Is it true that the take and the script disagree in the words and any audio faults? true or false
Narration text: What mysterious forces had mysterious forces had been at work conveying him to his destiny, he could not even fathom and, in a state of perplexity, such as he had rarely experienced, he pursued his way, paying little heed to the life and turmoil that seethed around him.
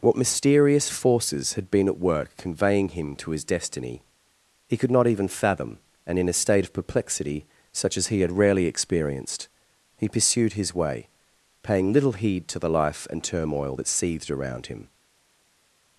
true